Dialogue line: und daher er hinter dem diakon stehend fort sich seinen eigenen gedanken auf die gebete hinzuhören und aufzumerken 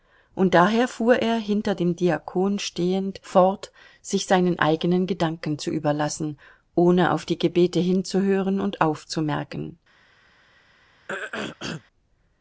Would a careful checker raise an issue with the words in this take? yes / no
yes